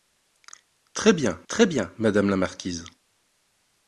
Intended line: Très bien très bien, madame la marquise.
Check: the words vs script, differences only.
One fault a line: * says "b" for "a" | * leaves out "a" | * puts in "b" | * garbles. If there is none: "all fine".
all fine